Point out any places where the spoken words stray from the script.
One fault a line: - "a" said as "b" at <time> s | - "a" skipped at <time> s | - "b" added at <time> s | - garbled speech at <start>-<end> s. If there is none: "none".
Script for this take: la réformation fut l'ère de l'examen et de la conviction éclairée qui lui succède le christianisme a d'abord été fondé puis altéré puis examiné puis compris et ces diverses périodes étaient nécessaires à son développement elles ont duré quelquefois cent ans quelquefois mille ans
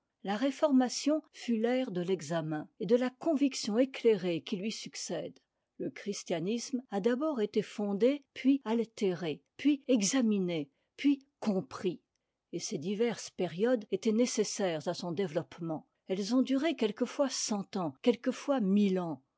none